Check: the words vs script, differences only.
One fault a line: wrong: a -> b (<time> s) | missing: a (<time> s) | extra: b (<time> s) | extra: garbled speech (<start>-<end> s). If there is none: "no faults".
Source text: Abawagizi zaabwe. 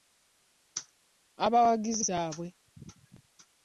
no faults